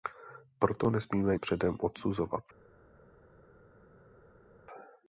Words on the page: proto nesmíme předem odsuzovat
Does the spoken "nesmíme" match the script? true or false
true